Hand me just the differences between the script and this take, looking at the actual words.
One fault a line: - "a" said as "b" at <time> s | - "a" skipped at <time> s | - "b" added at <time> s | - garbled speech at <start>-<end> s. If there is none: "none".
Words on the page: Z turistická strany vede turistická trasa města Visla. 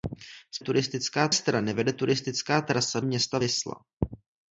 none